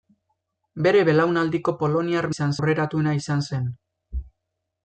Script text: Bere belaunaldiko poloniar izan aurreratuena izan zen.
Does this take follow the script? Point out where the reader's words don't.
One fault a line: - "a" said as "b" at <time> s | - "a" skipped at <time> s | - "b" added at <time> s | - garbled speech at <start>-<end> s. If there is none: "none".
none